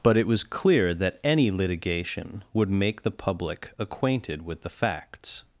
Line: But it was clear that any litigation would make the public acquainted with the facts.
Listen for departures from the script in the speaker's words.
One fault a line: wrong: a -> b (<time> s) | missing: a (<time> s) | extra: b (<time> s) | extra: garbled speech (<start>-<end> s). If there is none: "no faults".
no faults